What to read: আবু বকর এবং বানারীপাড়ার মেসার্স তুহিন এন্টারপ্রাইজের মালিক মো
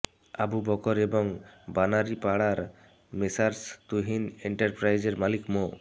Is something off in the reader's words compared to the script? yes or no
no